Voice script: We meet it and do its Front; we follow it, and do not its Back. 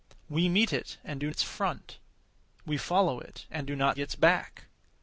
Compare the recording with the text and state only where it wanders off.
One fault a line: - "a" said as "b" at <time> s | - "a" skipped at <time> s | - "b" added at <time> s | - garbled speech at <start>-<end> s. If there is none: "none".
none